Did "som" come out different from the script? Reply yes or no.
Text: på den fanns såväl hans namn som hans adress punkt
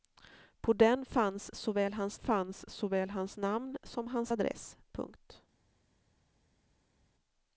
no